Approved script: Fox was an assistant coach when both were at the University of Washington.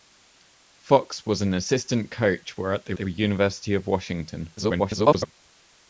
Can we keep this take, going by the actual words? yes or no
no